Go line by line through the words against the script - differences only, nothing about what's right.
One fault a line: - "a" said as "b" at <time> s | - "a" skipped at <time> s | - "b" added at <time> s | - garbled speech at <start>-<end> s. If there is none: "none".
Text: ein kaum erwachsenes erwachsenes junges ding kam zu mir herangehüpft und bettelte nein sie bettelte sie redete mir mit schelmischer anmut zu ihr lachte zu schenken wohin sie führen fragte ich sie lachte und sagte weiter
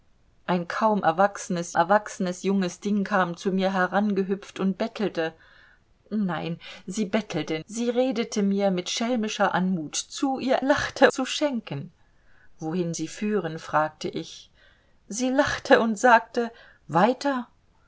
none